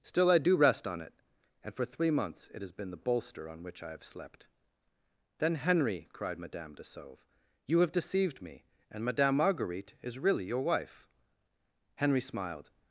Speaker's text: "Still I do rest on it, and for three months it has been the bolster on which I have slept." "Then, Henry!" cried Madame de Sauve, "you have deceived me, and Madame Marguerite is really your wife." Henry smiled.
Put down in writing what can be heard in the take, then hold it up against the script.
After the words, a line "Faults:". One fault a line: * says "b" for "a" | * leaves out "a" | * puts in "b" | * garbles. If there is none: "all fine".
"Still I do rest on it, and for three months it has been the bolster on which I have slept." "Then, Henry!" cried Madame de Sauve, "you have deceived me, and Madame Marguerite is really your wife." Henry smiled.
Faults:
all fine